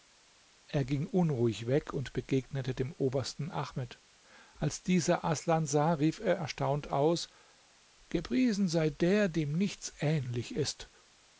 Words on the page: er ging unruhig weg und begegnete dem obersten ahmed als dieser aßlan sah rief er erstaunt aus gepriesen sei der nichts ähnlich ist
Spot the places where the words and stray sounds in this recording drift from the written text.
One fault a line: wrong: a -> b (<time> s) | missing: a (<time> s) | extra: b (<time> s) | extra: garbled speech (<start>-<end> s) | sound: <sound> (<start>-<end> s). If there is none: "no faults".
extra: dem (9.3 s)